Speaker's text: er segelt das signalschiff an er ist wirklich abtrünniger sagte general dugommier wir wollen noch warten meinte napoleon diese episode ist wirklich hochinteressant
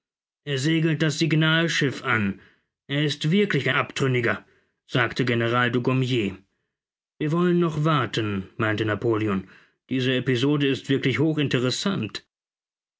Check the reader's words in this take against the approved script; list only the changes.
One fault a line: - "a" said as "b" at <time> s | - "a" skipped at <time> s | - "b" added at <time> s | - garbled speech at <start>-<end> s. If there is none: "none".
none